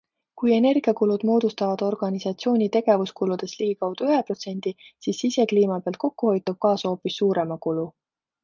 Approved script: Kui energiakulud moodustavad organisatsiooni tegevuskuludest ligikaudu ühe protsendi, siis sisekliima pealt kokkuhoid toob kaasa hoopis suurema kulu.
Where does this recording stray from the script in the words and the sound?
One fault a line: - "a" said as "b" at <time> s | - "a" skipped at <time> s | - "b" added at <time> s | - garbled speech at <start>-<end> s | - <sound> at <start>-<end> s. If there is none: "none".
none